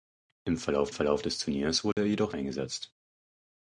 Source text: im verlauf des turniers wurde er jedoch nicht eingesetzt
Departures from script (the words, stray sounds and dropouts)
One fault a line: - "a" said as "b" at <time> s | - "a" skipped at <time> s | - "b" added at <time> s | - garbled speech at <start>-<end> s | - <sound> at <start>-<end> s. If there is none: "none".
- "verlauf" added at 0.9 s
- dropout at 1.9-2.0 s
- "nicht" skipped at 2.3 s